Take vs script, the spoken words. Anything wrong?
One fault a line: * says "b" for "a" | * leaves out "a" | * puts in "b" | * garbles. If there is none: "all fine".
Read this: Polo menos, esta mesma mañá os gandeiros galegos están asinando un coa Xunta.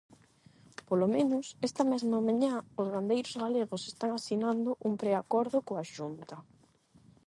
* puts in "preacordo"